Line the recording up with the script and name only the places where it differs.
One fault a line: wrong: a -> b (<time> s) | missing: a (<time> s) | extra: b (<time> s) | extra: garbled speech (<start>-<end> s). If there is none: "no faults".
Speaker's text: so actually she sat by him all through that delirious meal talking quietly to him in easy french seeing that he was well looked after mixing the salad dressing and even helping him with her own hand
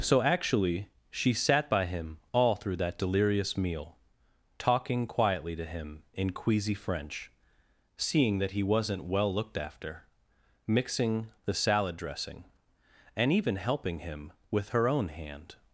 wrong: easy -> queasy (6.3 s)
wrong: was -> wasn't (8.6 s)